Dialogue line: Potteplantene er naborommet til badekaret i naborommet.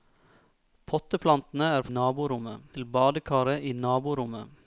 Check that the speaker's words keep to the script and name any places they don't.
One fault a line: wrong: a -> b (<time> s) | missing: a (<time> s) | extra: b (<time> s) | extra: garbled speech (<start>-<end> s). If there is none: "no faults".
no faults